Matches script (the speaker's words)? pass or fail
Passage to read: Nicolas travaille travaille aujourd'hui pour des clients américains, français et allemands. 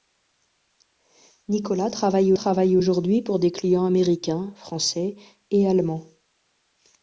pass